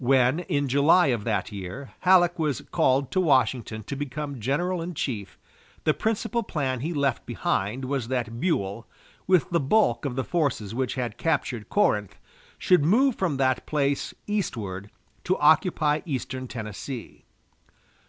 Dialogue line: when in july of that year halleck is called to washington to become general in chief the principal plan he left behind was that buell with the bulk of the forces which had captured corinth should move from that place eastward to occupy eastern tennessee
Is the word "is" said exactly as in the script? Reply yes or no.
no